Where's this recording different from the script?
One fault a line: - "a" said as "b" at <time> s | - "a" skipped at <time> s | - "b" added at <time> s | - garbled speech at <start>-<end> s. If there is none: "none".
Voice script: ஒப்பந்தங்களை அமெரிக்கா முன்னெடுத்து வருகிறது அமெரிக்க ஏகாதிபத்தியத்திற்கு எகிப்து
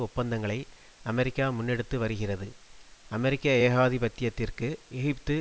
none